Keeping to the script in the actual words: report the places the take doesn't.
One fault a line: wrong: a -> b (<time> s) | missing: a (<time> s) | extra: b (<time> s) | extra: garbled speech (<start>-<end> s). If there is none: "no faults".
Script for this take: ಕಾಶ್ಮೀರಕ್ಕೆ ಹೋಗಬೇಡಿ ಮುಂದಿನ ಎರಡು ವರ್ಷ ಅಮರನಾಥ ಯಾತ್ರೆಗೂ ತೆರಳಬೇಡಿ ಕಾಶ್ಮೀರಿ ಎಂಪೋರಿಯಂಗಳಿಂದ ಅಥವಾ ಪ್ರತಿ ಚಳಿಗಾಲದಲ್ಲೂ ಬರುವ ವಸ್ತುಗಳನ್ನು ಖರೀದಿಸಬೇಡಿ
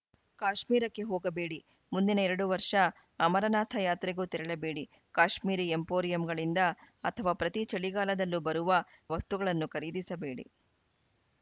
no faults